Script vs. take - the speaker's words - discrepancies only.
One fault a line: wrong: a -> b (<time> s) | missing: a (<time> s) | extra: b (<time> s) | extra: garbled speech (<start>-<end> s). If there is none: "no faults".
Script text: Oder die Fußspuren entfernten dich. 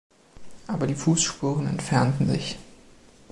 wrong: Oder -> Aber (0.7 s)
wrong: dich -> sich (2.3 s)